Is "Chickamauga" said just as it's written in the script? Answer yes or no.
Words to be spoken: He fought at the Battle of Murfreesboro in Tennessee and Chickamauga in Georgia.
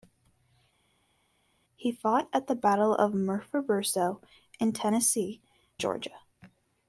no